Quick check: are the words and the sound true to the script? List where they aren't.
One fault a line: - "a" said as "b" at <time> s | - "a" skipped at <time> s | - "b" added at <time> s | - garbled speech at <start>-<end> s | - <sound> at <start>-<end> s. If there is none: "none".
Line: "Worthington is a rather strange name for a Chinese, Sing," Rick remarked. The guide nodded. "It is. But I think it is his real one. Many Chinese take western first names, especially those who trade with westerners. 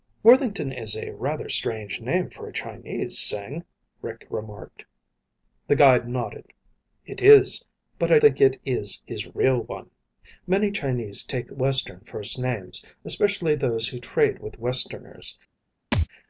- thud at 15.9-16.1 s